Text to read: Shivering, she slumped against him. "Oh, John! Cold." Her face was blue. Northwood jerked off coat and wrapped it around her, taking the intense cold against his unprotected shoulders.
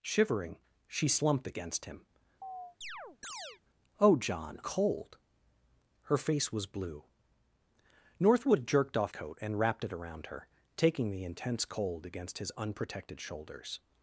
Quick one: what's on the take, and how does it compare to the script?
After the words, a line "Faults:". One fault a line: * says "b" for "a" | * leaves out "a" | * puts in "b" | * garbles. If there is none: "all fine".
Shivering, she slumped against him. "Oh, John! Cold." Her face was blue. Northwood jerked off coat and wrapped it around her, taking the intense cold against his unprotected shoulders.
Faults:
all fine